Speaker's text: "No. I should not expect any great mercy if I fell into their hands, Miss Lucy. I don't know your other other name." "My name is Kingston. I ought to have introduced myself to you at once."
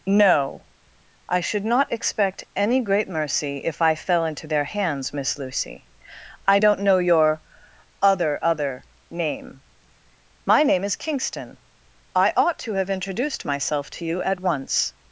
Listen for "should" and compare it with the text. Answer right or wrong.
right